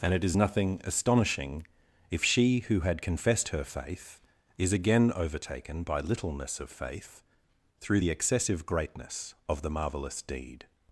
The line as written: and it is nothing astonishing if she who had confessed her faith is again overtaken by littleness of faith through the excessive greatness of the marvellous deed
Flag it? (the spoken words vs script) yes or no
no